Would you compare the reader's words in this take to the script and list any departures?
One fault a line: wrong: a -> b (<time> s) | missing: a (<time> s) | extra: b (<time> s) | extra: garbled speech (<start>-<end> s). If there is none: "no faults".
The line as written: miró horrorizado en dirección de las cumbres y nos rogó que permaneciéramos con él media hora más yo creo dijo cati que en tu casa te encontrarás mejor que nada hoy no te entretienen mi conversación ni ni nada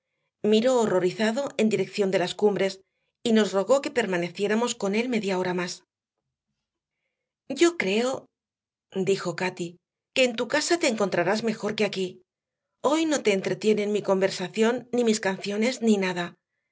wrong: nada -> aquí (11.8 s)
extra: mis canciones (15.0 s)